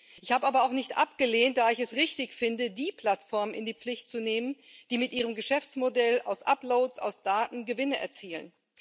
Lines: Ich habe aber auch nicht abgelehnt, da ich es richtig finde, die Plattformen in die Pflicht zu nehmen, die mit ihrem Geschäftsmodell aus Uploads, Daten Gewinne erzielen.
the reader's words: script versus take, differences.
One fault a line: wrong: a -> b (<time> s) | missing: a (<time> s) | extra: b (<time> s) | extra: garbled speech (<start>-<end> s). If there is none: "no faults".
extra: aus (7.0 s)